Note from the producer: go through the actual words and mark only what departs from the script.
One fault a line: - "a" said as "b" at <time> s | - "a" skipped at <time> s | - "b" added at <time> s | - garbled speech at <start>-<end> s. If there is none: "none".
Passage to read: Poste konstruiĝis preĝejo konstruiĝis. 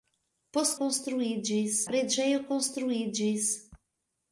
none